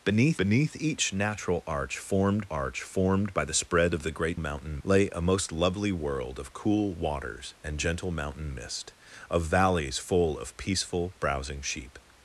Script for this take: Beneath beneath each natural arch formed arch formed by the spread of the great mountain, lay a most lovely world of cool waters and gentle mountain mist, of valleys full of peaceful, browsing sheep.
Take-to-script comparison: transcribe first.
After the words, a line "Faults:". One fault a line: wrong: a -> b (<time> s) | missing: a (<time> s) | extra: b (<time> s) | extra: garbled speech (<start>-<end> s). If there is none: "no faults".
Beneath beneath each natural arch formed arch formed by the spread of the great mountain, lay a most lovely world of cool waters and gentle mountain mist, of valleys full of peaceful, browsing sheep.
Faults:
no faults